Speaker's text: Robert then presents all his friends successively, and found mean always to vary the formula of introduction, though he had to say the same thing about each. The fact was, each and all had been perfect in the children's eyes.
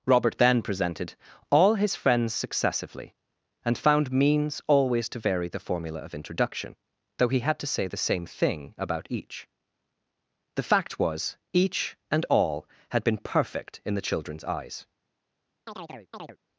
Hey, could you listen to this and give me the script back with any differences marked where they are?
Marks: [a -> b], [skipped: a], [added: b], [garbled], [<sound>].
Robert then [presents -> presented] all his friends successively, and found [mean -> means] always to vary the formula of introduction, though he had to say the same thing about each. The fact was, each and all had been perfect in the children's eyes. [chirp]